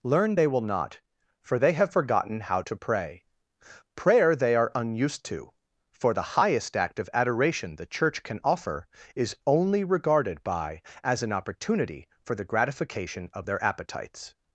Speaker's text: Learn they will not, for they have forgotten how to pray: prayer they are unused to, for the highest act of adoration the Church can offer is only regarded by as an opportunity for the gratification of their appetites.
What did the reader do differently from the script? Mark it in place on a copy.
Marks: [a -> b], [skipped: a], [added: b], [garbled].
Learn they will not, for they have forgotten how to pray: prayer they are unused to, for the highest act of adoration the Church can offer is only regarded by as an opportunity for the gratification of their appetites.